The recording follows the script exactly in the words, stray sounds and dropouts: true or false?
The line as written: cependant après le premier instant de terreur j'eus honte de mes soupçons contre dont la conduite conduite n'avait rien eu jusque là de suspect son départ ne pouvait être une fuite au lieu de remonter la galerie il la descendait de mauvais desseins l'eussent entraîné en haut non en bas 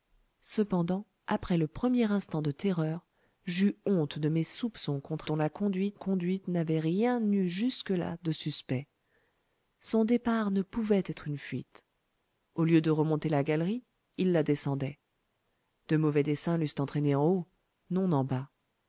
true